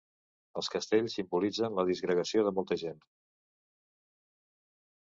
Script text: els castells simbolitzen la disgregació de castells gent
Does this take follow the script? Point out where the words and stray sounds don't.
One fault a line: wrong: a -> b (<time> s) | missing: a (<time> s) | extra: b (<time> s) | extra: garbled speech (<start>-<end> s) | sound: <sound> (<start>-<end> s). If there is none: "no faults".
wrong: castells -> molta (2.6 s)